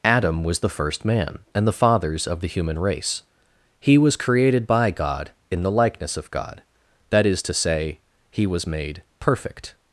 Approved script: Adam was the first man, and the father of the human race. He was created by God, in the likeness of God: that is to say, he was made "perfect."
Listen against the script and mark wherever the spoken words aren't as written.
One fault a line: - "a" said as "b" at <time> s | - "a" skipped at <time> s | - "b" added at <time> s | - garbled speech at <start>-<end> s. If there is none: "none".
- "father" said as "fathers" at 1.7 s